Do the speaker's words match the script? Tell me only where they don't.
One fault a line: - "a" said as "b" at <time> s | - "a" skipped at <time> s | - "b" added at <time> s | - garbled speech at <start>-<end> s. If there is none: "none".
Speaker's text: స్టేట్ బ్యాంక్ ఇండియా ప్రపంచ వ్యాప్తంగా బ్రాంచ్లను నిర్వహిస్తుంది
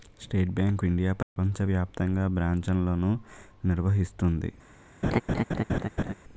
none